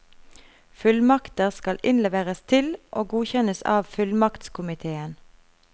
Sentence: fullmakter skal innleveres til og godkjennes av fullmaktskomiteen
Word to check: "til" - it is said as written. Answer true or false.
true